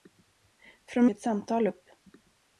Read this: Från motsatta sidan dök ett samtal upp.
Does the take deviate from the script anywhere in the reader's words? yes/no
yes